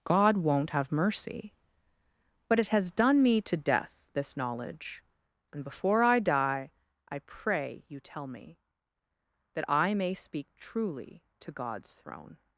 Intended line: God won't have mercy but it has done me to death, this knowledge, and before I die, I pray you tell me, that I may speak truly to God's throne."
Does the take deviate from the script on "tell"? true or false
false